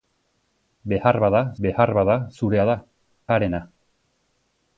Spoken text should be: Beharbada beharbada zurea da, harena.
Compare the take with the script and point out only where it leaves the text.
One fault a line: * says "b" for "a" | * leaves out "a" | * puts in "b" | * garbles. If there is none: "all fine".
all fine